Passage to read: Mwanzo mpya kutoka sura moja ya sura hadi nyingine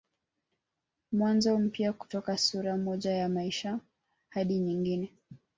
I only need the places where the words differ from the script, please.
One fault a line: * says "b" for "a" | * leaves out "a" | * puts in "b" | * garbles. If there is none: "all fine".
* says "maisha" for "sura"